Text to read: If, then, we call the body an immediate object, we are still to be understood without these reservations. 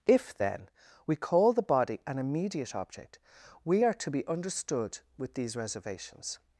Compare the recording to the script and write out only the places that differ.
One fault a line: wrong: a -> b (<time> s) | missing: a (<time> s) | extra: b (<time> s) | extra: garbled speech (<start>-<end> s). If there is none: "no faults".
missing: still (3.9 s)
wrong: without -> with (5.2 s)